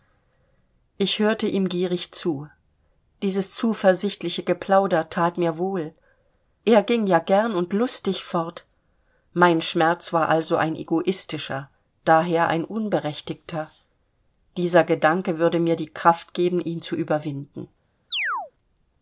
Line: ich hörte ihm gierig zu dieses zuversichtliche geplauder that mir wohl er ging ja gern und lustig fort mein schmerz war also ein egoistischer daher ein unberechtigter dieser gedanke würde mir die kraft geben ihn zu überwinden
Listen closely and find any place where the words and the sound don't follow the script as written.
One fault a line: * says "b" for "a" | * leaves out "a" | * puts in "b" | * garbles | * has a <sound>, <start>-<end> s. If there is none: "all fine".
* has a chirp, 18.1-18.5 s